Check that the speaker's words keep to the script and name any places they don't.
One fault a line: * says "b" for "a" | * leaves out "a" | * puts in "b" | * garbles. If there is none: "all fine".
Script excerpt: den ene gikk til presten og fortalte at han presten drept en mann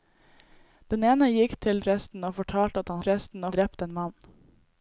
all fine